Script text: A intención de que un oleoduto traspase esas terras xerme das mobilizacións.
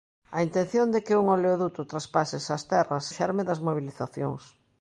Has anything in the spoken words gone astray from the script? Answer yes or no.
no